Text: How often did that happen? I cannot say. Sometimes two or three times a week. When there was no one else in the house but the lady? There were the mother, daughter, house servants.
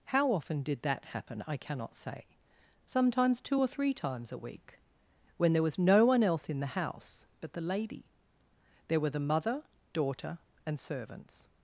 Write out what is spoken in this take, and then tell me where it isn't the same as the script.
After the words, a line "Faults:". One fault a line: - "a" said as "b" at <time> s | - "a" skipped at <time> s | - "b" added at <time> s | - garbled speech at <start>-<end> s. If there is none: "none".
How often did that happen? I cannot say. Sometimes two or three times a week. When there was no one else in the house but the lady? There were the mother, daughter, and servants.
Faults:
- "house" said as "and" at 10.7 s